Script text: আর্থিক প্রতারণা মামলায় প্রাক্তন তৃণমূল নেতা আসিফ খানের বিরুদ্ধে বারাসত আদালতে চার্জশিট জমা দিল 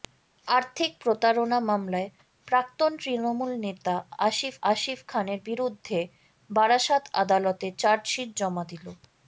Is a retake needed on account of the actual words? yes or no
yes